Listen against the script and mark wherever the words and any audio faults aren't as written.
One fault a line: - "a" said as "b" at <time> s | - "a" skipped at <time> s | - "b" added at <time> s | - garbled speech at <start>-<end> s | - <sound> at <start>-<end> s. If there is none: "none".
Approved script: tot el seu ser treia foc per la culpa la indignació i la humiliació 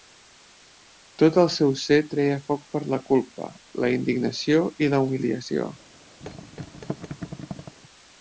- thud at 6.2-7.8 s